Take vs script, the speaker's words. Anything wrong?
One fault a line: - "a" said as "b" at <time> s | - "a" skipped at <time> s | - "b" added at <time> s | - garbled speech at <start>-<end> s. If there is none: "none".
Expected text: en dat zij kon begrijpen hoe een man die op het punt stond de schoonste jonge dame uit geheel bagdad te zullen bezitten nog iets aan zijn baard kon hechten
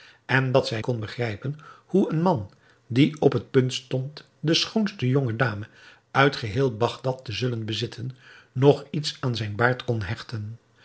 none